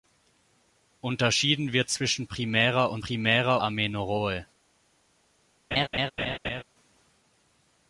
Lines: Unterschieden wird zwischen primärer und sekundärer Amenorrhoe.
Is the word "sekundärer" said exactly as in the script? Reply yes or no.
no